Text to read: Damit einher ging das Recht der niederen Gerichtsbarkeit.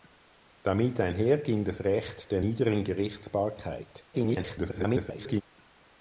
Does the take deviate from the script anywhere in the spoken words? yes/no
yes